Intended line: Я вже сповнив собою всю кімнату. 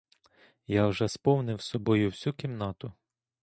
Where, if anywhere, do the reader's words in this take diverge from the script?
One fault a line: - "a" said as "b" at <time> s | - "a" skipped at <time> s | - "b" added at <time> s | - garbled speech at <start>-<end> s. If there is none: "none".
none